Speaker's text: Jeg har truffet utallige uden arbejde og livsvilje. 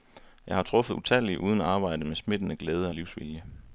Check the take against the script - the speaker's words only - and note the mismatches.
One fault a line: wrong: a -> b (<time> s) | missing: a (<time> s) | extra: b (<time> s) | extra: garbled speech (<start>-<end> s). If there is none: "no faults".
extra: med smittende glæde (2.0 s)